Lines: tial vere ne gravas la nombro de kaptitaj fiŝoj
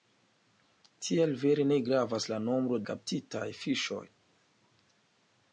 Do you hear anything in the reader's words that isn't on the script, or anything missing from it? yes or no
yes